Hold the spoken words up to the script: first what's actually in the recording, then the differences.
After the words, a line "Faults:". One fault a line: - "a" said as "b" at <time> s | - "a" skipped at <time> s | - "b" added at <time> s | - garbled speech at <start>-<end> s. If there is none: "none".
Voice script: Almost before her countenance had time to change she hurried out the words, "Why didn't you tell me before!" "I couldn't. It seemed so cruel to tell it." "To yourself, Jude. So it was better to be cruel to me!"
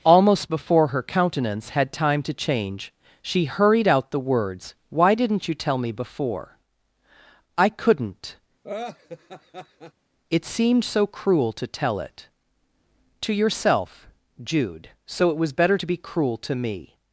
Almost before her countenance had time to change she hurried out the words, "Why didn't you tell me before!" "I couldn't. It seemed so cruel to tell it." "To yourself, Jude. So it was better to be cruel to me!"
Faults:
none